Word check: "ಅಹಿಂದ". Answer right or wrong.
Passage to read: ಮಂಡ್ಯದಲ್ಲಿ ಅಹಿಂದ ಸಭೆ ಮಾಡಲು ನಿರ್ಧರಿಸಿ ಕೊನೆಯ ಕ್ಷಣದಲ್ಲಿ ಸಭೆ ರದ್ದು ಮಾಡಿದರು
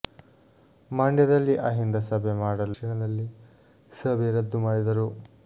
right